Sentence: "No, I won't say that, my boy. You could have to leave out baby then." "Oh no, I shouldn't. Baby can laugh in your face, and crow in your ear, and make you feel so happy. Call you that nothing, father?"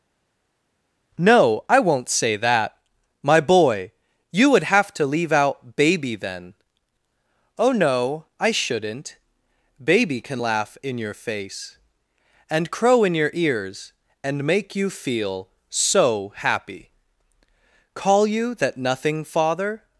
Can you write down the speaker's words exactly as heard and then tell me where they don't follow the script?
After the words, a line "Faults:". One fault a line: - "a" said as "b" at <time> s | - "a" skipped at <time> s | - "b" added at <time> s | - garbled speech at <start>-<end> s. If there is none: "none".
"No, I won't say that, my boy. You would have to leave out baby then." "Oh no, I shouldn't. Baby can laugh in your face, and crow in your ears, and make you feel so happy. Call you that nothing, father?"
Faults:
- "could" said as "would" at 4.5 s
- "ear" said as "ears" at 13.3 s